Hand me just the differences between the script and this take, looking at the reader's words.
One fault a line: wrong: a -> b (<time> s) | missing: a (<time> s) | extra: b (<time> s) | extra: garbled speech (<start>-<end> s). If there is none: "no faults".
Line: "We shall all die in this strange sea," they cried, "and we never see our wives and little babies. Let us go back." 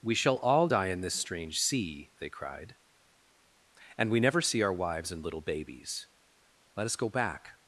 no faults